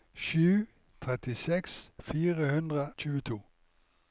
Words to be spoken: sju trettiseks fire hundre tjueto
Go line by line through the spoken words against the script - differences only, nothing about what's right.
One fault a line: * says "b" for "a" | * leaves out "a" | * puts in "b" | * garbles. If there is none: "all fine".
all fine